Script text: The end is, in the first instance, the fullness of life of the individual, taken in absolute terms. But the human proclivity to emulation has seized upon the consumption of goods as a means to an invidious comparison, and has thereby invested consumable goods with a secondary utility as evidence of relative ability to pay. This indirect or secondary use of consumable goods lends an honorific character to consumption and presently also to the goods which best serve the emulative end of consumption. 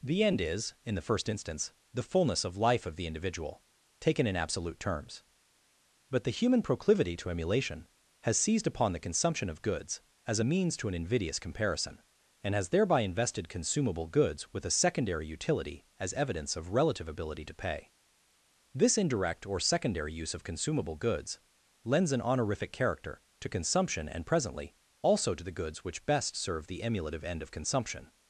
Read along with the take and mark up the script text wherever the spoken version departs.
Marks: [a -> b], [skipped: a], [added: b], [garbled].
The end is, in the first instance, the fullness of life of the individual, taken in absolute terms. But the human proclivity to emulation has seized upon the consumption of goods as a means to an invidious comparison, and has thereby invested consumable goods with a secondary utility as evidence of relative ability to pay. This indirect or secondary use of consumable goods lends an honorific character to consumption and presently also to the goods which best serve the emulative end of consumption.